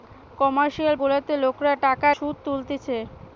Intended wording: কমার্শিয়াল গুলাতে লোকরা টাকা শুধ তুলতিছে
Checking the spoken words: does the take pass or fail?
pass